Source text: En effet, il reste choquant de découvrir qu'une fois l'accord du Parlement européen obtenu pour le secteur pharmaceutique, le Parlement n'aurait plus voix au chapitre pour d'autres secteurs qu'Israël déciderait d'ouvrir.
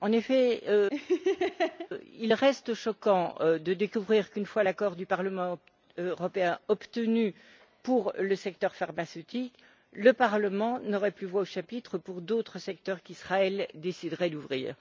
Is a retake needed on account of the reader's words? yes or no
no